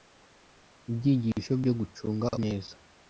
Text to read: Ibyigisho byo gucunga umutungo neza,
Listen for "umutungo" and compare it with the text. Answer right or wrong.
wrong